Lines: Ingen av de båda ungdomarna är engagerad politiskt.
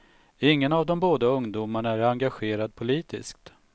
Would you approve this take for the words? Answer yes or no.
yes